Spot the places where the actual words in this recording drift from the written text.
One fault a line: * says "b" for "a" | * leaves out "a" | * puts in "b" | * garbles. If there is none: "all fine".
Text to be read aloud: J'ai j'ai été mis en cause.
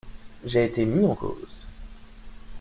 * leaves out "j'ai"